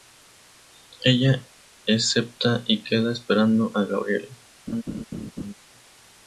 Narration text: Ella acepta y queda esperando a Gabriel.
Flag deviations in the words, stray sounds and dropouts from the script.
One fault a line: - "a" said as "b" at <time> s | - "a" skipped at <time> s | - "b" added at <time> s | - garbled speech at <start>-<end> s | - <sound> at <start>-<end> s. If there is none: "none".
- laugh at 4.7-5.5 s